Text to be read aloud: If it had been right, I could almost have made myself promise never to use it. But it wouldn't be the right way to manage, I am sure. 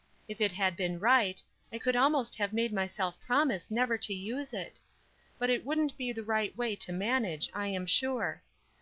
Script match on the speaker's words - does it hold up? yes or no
yes